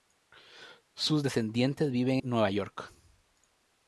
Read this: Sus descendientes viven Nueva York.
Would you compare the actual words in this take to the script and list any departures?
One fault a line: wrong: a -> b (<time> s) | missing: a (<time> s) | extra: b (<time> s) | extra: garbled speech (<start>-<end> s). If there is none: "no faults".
no faults